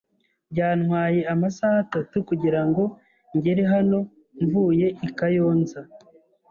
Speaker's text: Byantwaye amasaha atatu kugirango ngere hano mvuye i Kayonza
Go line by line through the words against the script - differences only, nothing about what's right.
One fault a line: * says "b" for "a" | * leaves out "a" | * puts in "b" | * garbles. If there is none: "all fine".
all fine